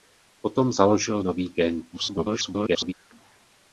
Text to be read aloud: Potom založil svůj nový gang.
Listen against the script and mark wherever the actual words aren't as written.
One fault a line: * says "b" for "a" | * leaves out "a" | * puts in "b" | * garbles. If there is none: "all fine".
* leaves out "svůj"
* garbles